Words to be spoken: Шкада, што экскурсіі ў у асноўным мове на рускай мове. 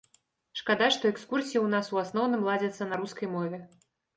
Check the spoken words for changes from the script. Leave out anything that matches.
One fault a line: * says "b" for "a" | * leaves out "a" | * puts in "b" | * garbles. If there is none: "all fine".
* puts in "нас"
* says "ладзяцца" for "мове"